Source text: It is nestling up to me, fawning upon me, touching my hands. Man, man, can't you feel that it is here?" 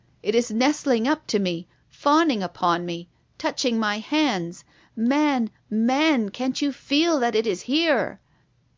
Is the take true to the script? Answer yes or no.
yes